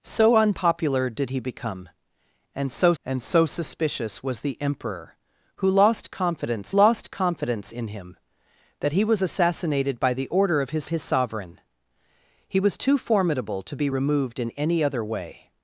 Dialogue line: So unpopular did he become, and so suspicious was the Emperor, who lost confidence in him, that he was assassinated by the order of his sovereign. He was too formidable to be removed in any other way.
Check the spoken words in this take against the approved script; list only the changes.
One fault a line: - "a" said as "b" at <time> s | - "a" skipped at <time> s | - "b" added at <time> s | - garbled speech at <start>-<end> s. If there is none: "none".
- "and so" added at 3.1 s
- "lost confidence" added at 6.7 s
- "his" added at 10.9 s